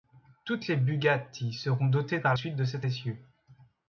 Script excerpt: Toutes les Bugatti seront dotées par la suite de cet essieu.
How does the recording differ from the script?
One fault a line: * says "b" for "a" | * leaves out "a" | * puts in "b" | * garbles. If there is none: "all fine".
* leaves out "la"